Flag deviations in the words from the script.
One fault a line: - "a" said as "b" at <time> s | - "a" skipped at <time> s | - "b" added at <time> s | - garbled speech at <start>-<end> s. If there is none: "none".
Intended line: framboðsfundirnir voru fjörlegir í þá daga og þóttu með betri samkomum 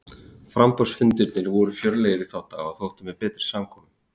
none